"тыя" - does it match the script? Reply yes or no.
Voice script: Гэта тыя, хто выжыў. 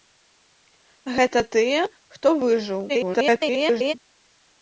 yes